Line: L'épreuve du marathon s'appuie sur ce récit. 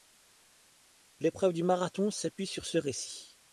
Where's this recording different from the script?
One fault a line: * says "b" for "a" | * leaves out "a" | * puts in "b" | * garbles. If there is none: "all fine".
all fine